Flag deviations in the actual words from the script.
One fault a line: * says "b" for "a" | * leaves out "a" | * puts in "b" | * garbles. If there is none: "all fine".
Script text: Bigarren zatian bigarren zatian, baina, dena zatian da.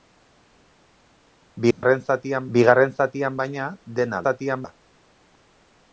all fine